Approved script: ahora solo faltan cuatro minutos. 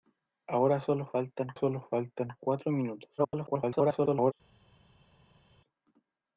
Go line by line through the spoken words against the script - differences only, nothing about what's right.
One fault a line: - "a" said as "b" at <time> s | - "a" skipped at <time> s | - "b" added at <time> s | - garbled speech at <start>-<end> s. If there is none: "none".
- "solo faltan" added at 1.5 s
- garbled speech at 3.2-4.3 s